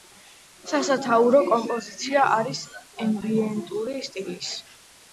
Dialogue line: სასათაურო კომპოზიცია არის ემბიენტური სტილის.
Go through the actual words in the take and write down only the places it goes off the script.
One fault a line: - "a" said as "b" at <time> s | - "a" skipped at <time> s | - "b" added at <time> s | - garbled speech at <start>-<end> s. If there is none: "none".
none